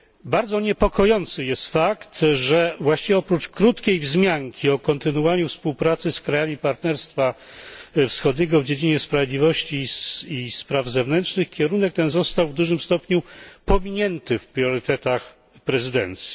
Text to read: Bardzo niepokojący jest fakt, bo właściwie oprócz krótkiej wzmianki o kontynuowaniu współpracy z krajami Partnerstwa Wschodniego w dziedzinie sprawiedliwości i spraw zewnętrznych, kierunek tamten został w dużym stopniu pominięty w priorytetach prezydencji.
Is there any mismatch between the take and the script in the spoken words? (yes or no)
yes